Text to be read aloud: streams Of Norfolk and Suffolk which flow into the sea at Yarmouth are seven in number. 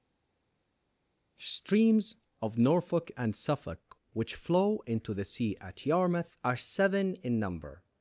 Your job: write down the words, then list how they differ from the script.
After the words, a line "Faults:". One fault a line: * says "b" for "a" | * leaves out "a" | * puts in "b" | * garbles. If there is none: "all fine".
streams Of Norfolk and Suffolk which flow into the sea at Yarmouth are seven in number.
Faults:
all fine